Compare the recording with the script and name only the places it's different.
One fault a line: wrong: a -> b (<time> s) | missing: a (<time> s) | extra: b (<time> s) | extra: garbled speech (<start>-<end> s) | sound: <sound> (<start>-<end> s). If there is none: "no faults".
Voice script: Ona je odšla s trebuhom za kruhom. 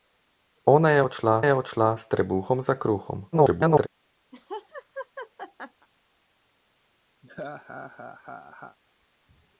extra: je odšla (1.4 s)
extra: garbled speech (3.3-3.9 s)
sound: laugh (4.3-5.9 s)
sound: laugh (7.2-8.8 s)